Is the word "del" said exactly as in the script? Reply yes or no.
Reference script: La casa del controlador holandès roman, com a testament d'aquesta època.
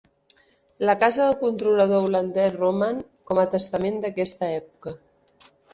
yes